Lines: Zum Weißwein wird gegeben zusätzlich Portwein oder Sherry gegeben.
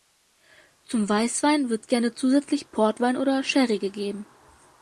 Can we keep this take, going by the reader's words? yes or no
no